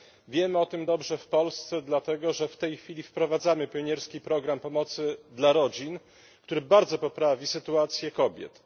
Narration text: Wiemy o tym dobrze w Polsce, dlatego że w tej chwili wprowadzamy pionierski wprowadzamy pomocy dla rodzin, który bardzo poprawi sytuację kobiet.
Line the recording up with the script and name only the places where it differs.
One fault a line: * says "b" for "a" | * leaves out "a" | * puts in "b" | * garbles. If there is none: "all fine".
* says "program" for "wprowadzamy"